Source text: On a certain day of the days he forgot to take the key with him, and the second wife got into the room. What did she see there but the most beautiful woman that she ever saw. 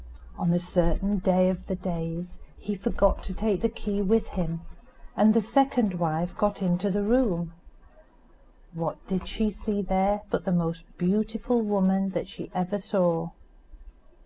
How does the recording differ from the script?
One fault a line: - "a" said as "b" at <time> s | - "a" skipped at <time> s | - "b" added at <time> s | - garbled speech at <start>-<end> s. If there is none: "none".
none